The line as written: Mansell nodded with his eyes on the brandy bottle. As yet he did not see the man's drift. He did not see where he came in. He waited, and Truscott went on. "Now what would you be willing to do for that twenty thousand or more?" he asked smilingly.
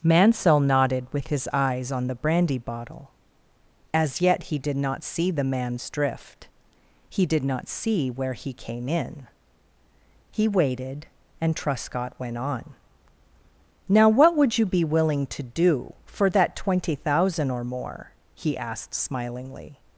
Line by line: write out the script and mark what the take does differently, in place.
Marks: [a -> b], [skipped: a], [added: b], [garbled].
Mansell nodded with his eyes on the brandy bottle. As yet he did not see the man's drift. He did not see where he came in. He waited, and Truscott went on. "Now what would you be willing to do for that twenty thousand or more?" he asked smilingly.